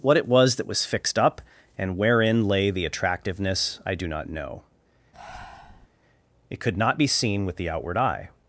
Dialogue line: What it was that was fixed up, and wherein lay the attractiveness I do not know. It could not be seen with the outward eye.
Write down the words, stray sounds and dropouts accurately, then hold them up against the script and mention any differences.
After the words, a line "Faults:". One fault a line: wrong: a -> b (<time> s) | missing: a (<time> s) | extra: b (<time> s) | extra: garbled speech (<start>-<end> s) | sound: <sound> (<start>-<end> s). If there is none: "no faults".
What it was that was fixed up, and wherein lay the attractiveness I do not know. It could not be seen with the outward eye.
Faults:
sound: breath (5.1-5.9 s)